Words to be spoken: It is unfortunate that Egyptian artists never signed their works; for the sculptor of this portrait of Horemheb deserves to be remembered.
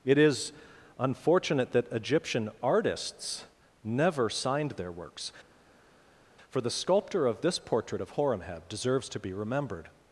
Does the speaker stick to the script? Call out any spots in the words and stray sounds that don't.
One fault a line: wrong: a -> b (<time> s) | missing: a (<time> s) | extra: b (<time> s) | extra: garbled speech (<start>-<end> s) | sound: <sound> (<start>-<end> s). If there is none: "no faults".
no faults